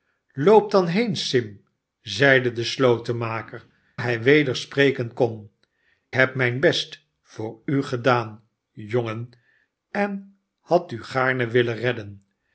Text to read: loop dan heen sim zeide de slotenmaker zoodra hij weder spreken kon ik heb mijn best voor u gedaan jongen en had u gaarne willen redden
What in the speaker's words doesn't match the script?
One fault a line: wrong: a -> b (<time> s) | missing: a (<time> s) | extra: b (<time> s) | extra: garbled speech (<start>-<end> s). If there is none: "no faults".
missing: zoodra (3.6 s)
missing: ik (5.5 s)